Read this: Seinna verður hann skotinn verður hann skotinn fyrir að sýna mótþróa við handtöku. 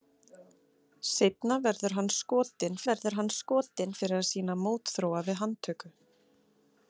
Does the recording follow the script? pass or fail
pass